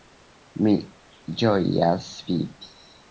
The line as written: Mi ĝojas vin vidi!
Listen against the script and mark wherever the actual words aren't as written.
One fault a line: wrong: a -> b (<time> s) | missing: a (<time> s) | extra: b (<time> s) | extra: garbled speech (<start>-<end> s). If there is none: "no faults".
missing: vin (2.1 s)